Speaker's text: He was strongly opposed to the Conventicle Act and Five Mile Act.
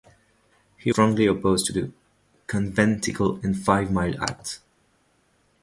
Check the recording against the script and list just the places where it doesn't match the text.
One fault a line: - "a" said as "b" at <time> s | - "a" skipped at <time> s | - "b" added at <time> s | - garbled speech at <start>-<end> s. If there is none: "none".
- "was" skipped at 0.9 s
- "Act" skipped at 3.4 s